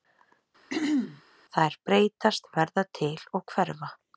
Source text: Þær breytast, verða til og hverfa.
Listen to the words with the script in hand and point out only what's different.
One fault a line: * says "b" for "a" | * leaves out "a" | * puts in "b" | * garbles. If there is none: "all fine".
all fine